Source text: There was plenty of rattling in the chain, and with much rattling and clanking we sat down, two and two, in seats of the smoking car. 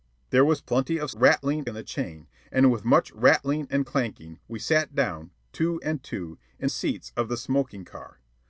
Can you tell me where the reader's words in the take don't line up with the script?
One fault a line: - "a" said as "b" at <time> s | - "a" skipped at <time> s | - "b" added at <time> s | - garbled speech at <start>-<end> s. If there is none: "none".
none